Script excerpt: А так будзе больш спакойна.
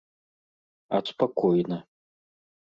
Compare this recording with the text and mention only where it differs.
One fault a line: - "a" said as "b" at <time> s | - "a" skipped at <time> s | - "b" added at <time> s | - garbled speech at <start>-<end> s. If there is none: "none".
- "так будзе больш" skipped at 1.0 s